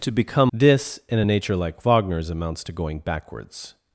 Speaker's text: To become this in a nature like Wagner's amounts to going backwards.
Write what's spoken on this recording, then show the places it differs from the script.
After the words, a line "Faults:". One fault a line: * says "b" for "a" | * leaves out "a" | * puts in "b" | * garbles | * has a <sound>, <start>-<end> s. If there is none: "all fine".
To become this in a nature like Wagner's amounts to going backwards.
Faults:
all fine